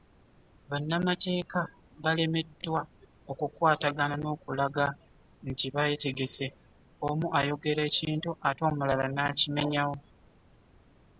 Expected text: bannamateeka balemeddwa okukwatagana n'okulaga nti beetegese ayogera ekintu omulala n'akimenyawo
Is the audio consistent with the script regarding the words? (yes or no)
no